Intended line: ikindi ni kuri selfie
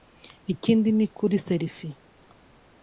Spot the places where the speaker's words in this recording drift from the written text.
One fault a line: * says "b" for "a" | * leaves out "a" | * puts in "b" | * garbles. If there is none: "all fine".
all fine